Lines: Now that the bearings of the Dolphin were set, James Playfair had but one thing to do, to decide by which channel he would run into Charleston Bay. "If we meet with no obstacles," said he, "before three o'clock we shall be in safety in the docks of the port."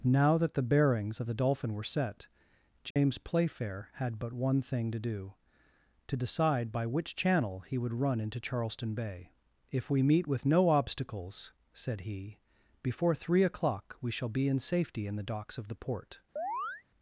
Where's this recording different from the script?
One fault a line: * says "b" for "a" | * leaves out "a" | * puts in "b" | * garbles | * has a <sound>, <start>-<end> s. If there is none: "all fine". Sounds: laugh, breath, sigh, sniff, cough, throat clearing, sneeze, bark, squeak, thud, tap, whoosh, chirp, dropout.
* has a dropout, 2.9-3.0 s
* has a chirp, 16.4-16.8 s